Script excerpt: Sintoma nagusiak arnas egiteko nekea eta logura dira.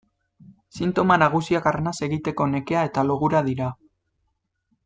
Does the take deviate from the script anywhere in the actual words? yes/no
no